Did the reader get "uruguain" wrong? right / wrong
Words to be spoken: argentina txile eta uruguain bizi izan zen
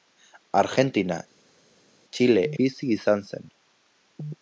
wrong